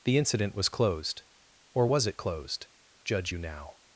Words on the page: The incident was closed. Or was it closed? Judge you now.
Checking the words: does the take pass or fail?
pass